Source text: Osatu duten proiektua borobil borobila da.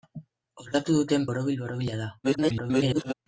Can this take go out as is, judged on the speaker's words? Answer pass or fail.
fail